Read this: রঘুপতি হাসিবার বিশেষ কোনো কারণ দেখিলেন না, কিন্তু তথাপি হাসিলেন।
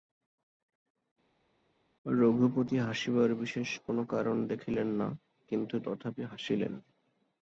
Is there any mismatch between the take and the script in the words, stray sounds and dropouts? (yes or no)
no